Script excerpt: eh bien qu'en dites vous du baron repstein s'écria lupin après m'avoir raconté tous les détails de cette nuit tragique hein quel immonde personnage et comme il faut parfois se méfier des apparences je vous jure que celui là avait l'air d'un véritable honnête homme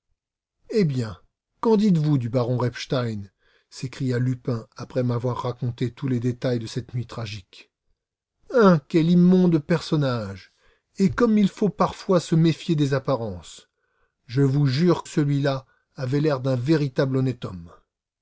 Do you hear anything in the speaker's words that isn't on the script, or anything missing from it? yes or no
yes